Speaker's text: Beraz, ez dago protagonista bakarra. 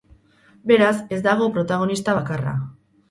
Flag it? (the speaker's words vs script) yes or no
no